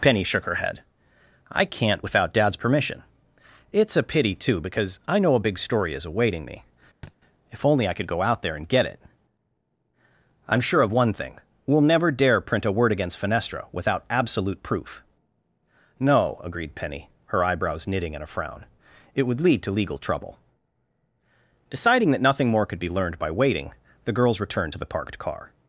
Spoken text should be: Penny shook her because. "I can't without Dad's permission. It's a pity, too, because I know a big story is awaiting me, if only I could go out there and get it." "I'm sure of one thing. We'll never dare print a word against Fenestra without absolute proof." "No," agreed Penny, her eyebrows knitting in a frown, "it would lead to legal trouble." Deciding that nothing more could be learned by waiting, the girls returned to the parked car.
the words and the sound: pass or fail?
fail